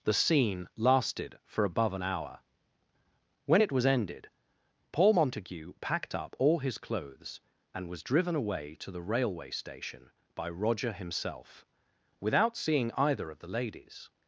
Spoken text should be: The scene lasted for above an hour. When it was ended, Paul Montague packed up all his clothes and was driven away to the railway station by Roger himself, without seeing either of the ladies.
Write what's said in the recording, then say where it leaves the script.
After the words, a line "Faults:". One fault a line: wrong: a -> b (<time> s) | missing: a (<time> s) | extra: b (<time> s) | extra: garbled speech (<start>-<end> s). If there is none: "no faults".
The scene lasted for above an hour. When it was ended, Paul Montague packed up all his clothes and was driven away to the railway station by Roger himself, without seeing either of the ladies.
Faults:
no faults